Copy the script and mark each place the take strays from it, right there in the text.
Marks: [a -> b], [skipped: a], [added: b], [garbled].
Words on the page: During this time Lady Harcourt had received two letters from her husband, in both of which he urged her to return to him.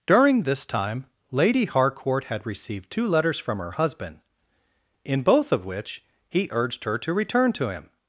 During this time Lady Harcourt had received two letters from her husband, in both of which he urged her to return to him.